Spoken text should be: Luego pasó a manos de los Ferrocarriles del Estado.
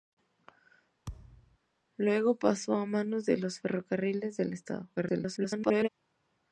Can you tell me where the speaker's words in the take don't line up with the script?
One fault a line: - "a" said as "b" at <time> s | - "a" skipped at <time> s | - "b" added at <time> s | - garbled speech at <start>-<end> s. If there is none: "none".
- garbled speech at 5.0-5.9 s